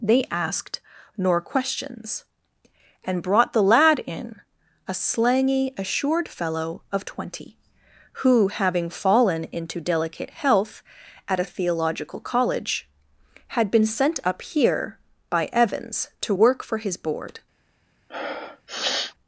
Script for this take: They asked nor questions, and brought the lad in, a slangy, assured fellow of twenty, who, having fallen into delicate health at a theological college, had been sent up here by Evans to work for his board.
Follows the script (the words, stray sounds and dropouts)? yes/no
no